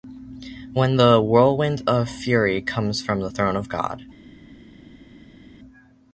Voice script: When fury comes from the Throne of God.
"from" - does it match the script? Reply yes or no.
yes